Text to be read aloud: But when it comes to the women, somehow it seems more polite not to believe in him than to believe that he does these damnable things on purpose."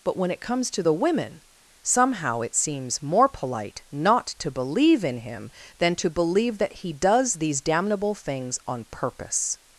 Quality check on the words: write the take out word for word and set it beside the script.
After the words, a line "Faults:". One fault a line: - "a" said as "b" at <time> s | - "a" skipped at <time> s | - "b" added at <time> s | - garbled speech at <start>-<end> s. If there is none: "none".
But when it comes to the women, somehow it seems more polite not to believe in him than to believe that he does these damnable things on purpose."
Faults:
none